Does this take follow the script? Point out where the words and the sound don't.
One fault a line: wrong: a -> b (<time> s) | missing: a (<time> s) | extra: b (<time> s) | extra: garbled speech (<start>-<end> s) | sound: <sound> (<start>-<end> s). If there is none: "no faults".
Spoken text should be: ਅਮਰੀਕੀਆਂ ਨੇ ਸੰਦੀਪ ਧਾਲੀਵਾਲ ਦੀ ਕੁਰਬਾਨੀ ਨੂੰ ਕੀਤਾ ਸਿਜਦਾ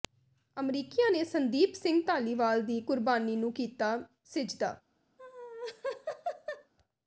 extra: ਸਿੰਘ (1.7 s)
sound: laugh (5.2-6.7 s)